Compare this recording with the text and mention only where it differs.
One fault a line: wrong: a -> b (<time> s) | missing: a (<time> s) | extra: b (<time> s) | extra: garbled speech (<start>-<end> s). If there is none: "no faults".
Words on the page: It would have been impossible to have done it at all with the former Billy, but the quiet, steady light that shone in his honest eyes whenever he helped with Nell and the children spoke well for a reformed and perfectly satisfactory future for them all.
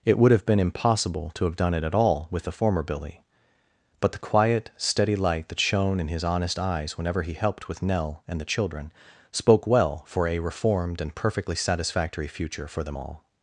no faults